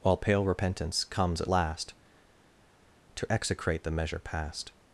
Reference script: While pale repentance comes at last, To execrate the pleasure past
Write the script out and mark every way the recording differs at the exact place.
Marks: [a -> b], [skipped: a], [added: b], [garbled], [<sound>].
While pale repentance comes at last, To execrate the [pleasure -> measure] past